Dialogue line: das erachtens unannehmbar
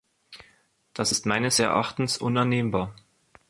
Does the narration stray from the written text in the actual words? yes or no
yes